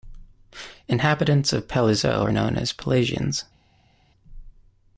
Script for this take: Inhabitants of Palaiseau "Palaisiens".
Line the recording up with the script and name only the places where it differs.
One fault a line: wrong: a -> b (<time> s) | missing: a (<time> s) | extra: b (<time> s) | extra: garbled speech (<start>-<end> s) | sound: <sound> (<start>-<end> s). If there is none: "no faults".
extra: are known as (2.2 s)